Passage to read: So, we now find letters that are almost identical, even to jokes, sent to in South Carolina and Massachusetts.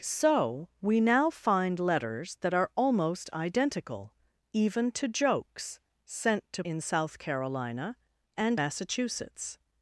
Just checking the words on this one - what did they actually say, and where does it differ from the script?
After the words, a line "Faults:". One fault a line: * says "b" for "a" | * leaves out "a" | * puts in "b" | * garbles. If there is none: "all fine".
So, we now find letters that are almost identical, even to jokes, sent to in South Carolina and Massachusetts.
Faults:
all fine